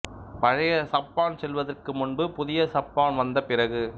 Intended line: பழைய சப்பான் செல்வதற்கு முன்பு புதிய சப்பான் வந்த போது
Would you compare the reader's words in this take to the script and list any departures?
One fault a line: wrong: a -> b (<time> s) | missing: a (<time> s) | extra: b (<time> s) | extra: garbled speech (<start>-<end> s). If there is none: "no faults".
wrong: போது -> பிறகு (3.4 s)